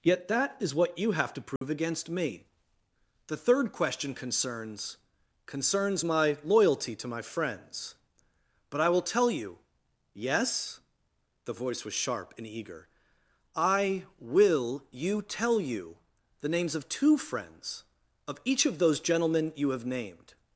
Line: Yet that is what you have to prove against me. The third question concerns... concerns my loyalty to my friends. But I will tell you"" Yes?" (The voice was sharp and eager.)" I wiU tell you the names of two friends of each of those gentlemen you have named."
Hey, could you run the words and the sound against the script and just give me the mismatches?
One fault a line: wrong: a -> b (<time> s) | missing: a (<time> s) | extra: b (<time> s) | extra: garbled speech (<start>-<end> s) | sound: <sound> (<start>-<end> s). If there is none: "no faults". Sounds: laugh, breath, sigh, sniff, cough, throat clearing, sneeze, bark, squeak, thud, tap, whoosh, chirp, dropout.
sound: dropout (1.6-1.6 s)
wrong: wiU -> will you (14.2 s)